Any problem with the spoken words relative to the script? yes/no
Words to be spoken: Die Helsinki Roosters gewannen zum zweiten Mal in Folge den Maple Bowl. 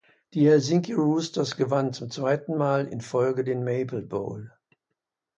no